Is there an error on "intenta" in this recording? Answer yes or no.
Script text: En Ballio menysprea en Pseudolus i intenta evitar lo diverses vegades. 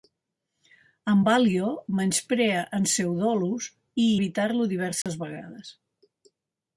yes